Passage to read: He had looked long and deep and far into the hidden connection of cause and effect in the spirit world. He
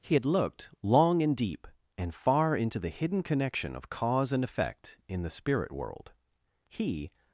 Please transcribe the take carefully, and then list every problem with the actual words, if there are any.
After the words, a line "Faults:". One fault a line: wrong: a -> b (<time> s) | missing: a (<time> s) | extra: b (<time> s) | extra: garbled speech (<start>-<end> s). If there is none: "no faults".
He had looked long and deep and far into the hidden connection of cause and effect in the spirit world. He
Faults:
no faults